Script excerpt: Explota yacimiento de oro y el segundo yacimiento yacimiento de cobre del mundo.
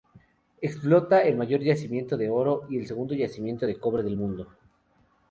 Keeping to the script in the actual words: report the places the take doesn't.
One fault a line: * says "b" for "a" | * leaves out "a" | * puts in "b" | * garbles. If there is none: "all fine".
* puts in "el mayor"
* leaves out "yacimiento"